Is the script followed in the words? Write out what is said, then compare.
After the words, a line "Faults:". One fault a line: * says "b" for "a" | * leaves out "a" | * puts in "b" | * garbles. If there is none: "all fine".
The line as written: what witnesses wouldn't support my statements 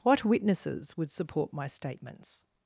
what witnesses would support my statements
Faults:
* says "would" for "wouldn't"